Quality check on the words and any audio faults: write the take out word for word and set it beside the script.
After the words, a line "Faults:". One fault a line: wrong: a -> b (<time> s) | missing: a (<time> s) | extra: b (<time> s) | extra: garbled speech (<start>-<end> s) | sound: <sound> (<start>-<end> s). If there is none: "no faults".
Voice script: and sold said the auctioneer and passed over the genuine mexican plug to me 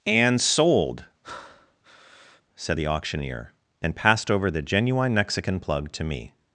and sold said the auctioneer and passed over the genuine mexican plug to me
Faults:
sound: breath (1.2-2.4 s)